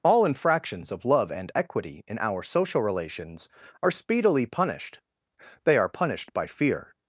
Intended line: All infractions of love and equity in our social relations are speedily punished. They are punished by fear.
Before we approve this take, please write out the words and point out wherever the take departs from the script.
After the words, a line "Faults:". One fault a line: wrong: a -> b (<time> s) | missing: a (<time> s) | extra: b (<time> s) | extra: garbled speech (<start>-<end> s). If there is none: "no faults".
All infractions of love and equity in our social relations are speedily punished. They are punished by fear.
Faults:
no faults